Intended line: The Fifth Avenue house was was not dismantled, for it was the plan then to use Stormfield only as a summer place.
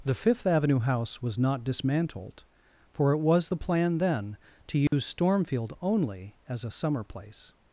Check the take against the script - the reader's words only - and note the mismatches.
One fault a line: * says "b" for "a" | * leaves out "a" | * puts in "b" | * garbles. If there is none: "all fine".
* leaves out "was"